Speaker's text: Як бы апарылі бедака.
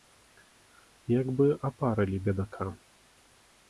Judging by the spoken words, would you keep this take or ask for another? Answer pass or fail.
pass